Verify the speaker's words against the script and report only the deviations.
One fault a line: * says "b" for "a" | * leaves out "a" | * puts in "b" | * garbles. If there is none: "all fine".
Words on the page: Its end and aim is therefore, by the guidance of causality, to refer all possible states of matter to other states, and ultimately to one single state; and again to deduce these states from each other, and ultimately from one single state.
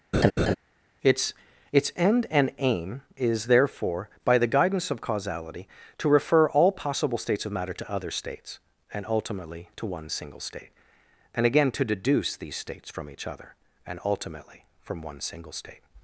* puts in "its"